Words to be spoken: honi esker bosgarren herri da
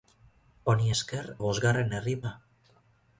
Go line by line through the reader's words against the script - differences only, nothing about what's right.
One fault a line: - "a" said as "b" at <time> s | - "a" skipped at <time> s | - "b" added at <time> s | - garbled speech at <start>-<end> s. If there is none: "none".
none